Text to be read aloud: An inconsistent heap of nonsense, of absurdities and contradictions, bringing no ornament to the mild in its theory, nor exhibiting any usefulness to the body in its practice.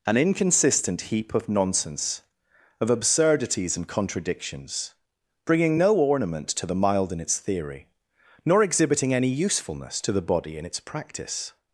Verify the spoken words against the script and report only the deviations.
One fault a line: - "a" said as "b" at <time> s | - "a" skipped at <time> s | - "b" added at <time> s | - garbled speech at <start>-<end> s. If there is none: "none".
none